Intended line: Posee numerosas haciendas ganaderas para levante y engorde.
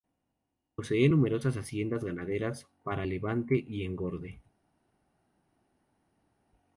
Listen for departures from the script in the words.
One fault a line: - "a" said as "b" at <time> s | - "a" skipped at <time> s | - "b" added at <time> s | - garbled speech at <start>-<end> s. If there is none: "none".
none